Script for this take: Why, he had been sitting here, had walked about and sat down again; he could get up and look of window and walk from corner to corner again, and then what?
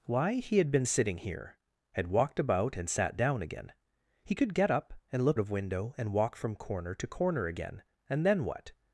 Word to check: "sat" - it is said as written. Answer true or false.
true